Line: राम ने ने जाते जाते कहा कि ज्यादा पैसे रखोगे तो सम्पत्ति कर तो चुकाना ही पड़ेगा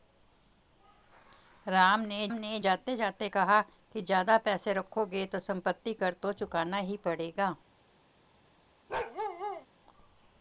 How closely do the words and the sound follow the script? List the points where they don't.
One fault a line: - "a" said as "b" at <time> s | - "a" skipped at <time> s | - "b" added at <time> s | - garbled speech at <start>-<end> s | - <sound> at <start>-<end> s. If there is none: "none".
- bark at 8.9-9.7 s